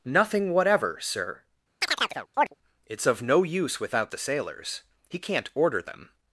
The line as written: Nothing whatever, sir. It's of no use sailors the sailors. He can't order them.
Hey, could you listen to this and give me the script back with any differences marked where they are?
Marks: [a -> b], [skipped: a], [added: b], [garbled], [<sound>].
Nothing whatever, sir. [chirp] It's of no use [sailors -> without] the sailors. He can't order them.